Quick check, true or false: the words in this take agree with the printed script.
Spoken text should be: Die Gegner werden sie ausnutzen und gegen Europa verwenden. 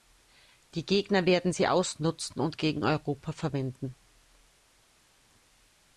true